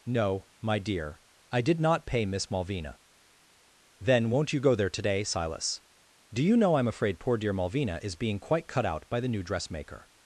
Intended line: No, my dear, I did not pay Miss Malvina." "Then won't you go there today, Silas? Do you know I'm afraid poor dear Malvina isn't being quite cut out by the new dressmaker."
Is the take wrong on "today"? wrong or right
right